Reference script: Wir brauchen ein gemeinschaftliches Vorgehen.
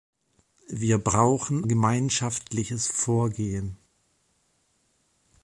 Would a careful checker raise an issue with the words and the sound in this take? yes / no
yes